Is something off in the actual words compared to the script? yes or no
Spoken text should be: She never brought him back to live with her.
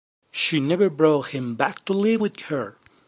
no